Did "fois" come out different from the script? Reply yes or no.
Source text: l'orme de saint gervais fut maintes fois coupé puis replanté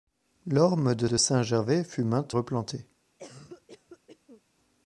yes